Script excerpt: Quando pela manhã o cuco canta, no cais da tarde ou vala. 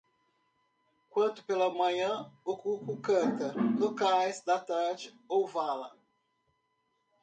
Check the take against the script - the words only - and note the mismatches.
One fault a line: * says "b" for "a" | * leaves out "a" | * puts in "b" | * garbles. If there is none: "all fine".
all fine